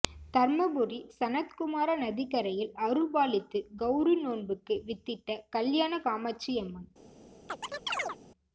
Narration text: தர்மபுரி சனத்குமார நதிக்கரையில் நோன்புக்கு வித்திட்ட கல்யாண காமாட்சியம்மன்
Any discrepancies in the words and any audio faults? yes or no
yes